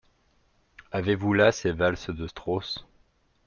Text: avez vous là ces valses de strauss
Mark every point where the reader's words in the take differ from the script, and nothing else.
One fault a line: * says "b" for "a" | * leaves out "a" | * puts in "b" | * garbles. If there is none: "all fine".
all fine